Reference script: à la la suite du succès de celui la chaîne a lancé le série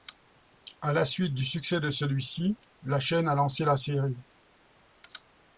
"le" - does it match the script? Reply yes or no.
no